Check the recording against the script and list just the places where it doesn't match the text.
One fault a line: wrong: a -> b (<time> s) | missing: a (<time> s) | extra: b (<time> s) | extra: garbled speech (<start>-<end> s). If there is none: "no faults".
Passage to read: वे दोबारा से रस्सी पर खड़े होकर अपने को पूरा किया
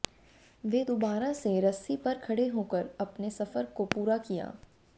extra: सफर (3.3 s)